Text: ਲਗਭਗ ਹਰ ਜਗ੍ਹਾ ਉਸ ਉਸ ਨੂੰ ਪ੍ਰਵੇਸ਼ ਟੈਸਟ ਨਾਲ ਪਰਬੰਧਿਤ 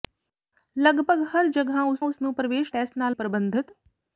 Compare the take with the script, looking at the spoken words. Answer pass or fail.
pass